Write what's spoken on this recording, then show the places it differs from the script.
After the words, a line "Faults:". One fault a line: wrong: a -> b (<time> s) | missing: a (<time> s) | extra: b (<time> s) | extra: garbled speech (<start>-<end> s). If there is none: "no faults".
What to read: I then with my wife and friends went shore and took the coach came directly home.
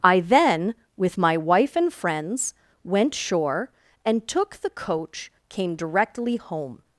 I then with my wife and friends went shore and took the coach came directly home.
Faults:
no faults